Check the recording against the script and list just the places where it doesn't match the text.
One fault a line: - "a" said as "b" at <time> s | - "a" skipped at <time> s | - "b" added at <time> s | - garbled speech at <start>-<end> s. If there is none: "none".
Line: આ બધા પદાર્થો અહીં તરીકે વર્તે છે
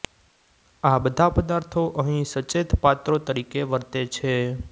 - "સચેત પાત્રો" added at 2.3 s